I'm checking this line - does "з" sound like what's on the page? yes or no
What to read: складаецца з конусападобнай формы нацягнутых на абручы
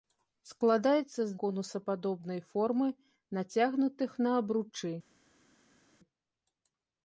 yes